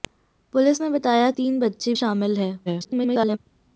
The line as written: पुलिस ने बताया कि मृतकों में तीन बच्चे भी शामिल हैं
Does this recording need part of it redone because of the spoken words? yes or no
yes